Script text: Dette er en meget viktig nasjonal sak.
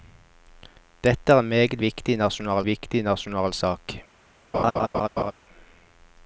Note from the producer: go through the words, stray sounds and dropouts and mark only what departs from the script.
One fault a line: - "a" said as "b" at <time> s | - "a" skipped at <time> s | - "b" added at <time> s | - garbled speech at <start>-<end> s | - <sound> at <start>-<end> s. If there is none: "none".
- "viktig nasjonal" added at 2.7 s
- laugh at 4.5-5.3 s